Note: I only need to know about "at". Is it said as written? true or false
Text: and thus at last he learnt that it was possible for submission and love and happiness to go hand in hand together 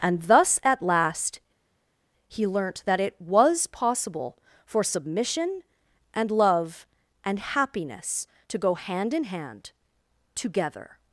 true